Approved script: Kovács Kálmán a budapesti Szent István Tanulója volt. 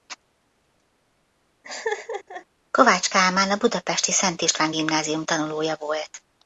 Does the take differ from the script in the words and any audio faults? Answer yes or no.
yes